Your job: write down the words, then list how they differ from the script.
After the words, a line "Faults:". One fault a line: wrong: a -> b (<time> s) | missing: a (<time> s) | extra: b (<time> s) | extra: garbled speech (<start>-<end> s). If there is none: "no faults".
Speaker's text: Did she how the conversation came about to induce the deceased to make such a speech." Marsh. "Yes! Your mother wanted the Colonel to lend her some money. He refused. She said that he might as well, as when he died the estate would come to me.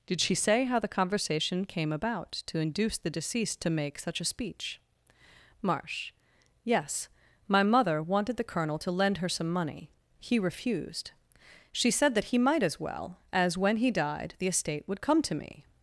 Did she say how the conversation came about to induce the deceased to make such a speech." Marsh. "Yes! My mother wanted the Colonel to lend her some money. He refused. She said that he might as well, as when he died the estate would come to me.
Faults:
extra: say (0.3 s)
wrong: Your -> My (7.5 s)